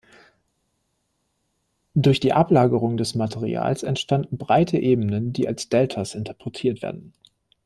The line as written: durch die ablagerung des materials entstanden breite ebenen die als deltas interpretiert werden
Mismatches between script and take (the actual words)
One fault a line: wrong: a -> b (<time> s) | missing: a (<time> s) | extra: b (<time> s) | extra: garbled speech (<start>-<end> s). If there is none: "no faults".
no faults